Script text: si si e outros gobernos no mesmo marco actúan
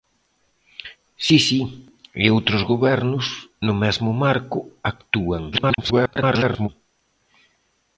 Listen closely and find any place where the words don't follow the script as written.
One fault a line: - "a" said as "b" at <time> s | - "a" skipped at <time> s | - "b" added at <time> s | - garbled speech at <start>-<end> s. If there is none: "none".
- garbled speech at 5.5-6.7 s